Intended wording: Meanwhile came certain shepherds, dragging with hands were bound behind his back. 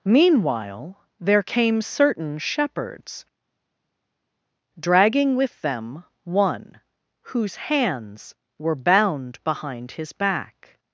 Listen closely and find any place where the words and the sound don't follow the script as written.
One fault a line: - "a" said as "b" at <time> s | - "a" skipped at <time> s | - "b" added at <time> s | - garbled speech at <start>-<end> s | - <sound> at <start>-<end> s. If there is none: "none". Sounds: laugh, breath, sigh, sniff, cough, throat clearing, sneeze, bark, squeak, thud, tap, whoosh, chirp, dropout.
- "there" added at 1.2 s
- "them one whose" added at 5.6 s